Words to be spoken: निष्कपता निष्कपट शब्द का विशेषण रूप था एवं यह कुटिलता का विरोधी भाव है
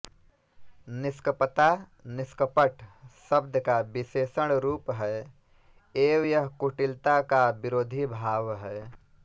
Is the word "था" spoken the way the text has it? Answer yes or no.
no